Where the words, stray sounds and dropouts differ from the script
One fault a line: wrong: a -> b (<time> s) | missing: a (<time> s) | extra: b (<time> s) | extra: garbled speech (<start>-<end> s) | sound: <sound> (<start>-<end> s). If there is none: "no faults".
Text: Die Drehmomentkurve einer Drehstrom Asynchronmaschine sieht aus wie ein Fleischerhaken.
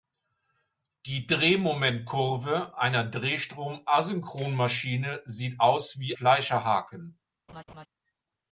missing: ein (6.2 s)
sound: laugh (7.5-7.9 s)